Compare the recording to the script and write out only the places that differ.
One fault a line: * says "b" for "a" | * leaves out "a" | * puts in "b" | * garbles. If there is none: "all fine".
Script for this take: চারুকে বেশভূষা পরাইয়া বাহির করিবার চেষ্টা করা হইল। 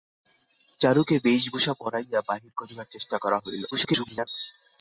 * garbles